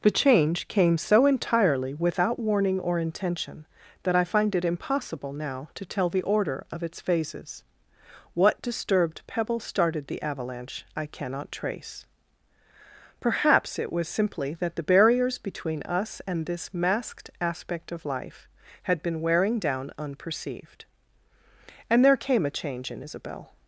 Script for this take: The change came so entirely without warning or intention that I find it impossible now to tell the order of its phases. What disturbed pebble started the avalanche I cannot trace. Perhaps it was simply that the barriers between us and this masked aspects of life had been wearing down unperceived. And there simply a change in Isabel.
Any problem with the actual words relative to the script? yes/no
yes